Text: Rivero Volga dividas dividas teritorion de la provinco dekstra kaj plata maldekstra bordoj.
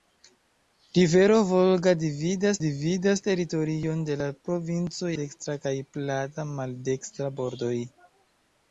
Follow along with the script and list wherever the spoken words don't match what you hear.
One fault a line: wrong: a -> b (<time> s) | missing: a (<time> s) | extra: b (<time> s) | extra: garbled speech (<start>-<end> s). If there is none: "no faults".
no faults